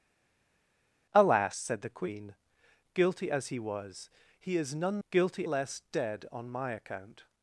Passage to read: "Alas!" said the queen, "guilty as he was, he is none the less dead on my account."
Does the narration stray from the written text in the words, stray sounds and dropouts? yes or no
yes